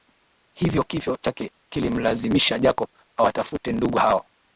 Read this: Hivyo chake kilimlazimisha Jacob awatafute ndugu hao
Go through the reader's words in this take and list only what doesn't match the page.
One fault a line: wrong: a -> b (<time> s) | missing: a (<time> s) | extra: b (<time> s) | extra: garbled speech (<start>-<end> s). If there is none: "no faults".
no faults